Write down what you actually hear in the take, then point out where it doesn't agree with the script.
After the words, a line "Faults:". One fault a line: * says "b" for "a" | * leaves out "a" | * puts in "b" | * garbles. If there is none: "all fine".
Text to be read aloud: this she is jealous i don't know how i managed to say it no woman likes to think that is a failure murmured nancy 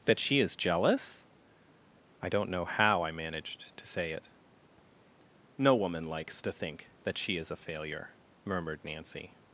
that she is jealous i don't know how i managed to say it no woman likes to think that she is a failure murmured nancy
Faults:
* says "that" for "this"
* puts in "she"